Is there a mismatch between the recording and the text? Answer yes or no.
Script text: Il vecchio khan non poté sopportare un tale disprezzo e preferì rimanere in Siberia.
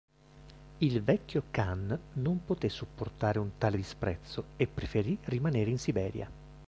no